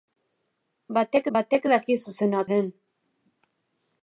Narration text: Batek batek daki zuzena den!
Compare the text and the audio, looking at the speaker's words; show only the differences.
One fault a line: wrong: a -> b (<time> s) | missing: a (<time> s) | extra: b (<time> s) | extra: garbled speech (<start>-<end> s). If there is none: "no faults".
no faults